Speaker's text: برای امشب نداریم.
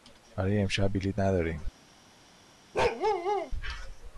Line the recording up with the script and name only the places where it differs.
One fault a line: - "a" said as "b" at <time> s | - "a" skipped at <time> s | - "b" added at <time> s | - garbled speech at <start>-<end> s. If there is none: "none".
- "بلیط" added at 0.9 s